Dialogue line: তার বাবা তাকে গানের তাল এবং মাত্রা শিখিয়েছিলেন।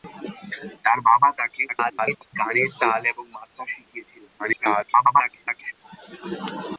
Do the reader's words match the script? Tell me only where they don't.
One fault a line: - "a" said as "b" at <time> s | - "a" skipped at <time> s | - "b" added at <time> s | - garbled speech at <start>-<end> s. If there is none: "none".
- garbled speech at 1.7-2.3 s
- garbled speech at 4.4-5.7 s